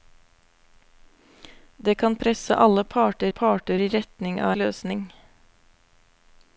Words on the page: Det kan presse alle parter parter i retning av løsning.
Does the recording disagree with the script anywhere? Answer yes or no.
no